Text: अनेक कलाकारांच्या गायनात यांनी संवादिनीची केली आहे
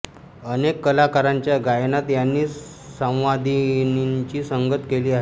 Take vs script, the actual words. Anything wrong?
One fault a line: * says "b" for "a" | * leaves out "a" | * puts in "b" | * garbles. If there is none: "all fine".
* puts in "संगत"